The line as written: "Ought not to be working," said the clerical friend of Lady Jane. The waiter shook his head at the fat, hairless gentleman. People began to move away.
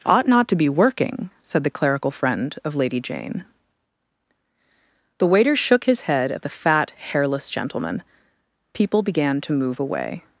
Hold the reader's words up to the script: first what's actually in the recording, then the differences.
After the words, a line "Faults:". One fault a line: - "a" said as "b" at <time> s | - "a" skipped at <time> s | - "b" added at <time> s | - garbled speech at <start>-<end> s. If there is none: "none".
"Ought not to be working," said the clerical friend of Lady Jane. The waiter shook his head at the fat, hairless gentleman. People began to move away.
Faults:
none